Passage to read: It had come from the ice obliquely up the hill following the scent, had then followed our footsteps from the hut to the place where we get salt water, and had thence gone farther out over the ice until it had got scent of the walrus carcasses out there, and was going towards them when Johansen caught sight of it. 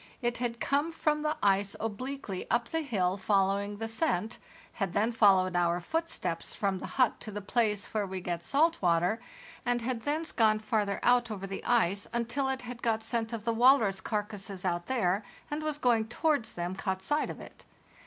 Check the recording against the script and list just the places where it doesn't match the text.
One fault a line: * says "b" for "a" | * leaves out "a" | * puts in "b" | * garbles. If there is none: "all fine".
* leaves out "when Johansen"